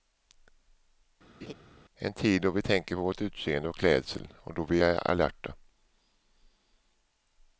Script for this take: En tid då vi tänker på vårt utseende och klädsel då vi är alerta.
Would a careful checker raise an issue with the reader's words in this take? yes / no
yes